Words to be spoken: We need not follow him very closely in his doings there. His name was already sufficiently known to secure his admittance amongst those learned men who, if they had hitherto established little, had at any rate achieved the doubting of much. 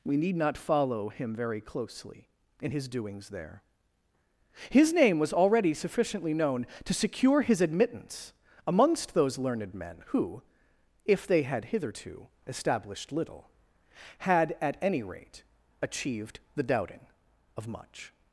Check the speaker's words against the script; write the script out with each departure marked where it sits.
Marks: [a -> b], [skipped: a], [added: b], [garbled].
We need not follow him very closely in his doings there. His name was already sufficiently known to secure his admittance amongst those learned men who, if they had hitherto established little, had at any rate achieved the doubting of much.